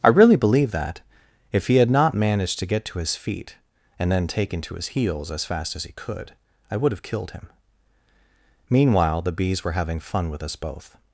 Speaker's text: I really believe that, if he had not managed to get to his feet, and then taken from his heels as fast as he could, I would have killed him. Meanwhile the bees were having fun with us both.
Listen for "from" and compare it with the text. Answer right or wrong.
wrong